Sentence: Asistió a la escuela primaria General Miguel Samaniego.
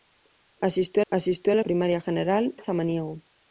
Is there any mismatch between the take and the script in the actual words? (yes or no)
yes